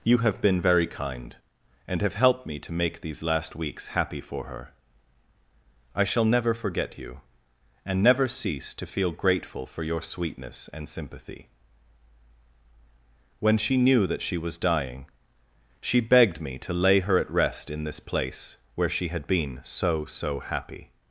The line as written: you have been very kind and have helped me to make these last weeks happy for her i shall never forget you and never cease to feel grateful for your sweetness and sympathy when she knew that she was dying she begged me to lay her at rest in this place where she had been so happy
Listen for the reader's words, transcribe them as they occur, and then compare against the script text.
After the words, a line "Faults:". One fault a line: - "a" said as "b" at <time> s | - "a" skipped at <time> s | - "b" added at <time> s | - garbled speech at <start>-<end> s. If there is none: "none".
you have been very kind and have helped me to make these last weeks happy for her i shall never forget you and never cease to feel grateful for your sweetness and sympathy when she knew that she was dying she begged me to lay her at rest in this place where she had been so so happy
Faults:
- "so" added at 20.1 s